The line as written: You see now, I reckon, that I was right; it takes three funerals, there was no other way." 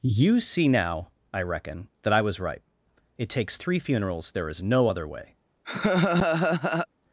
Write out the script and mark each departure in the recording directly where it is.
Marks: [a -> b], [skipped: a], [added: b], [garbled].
You see now, I reckon, that I was right; it takes three funerals, there [was -> is] no other way."